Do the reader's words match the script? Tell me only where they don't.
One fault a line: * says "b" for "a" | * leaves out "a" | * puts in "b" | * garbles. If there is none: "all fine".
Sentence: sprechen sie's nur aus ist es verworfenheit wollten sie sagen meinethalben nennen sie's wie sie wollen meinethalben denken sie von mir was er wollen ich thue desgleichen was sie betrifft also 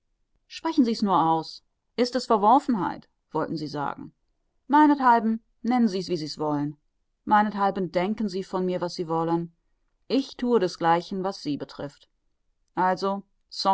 * says "sie" for "er"